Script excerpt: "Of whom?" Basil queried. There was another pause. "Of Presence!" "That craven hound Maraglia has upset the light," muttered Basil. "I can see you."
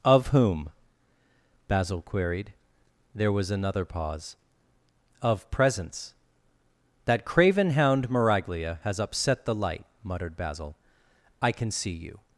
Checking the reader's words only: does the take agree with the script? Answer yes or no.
yes